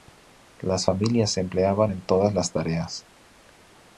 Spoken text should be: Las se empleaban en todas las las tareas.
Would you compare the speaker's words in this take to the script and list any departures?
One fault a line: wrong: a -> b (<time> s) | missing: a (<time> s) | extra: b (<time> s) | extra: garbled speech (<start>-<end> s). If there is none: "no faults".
extra: familias (0.8 s)
missing: las (2.5 s)